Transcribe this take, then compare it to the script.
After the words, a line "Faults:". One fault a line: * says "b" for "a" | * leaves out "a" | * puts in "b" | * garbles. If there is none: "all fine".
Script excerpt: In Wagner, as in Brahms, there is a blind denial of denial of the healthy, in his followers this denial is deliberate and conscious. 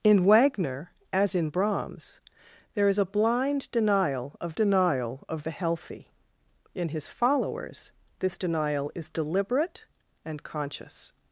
In Wagner, as in Brahms, there is a blind denial of denial of the healthy, in his followers this denial is deliberate and conscious.
Faults:
all fine